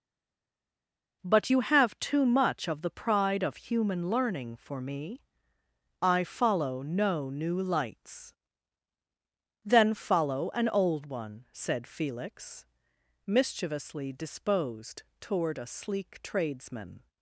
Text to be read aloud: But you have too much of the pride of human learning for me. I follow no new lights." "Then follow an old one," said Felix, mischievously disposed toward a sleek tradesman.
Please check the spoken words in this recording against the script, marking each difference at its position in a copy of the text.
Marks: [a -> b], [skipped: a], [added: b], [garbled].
But you have too much of the pride of human learning for me. I follow no new lights." "Then follow an old one," said Felix, mischievously disposed toward a sleek tradesman.